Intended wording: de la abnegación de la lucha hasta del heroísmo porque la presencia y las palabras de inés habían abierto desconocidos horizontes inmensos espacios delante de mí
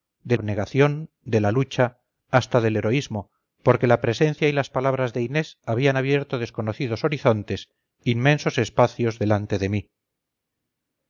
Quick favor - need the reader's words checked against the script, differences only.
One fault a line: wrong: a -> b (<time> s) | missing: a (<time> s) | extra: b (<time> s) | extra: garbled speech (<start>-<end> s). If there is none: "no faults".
missing: la (0.3 s)